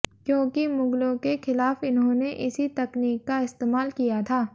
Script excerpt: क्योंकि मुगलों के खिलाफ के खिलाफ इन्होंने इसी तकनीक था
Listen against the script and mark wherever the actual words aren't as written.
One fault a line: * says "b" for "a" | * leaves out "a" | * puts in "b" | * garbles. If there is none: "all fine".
* leaves out "के खिलाफ"
* puts in "का इस्तेमाल किया"